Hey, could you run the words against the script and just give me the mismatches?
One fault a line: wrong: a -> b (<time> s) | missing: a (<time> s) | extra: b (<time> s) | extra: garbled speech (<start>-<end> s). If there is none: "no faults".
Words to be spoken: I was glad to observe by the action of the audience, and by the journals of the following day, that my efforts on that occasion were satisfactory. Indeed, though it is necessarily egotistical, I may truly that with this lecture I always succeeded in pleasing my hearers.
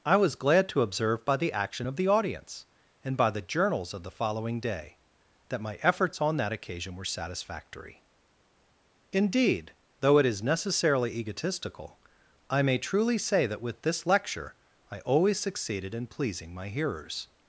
extra: say (13.2 s)